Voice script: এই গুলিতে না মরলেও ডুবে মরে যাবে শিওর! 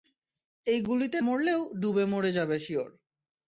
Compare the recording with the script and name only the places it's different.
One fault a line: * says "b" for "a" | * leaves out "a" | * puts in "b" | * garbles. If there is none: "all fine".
* leaves out "না"